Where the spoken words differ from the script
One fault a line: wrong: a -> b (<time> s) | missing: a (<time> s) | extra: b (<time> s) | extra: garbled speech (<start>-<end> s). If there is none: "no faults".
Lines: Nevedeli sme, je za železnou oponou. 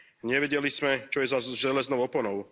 extra: čo (1.1 s)